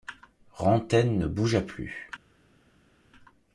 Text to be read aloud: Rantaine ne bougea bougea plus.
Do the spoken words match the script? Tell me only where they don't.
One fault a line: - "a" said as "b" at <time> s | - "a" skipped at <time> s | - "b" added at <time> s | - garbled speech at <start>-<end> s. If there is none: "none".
- "bougea" skipped at 1.6 s